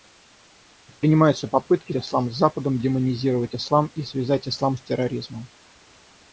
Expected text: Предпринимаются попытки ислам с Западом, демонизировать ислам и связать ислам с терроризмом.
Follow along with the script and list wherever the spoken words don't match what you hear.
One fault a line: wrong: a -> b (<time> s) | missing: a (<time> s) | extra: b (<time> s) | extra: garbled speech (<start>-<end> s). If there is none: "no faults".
no faults